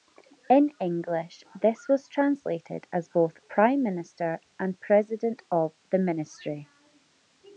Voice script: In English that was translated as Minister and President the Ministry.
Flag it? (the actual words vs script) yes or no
yes